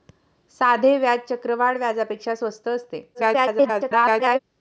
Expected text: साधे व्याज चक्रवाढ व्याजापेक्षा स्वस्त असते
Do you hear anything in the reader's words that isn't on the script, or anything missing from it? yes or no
yes